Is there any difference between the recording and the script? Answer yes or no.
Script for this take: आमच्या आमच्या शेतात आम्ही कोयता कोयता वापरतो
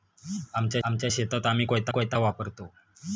no